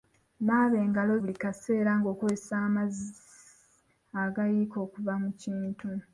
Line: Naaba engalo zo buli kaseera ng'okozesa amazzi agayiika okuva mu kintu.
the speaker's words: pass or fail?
fail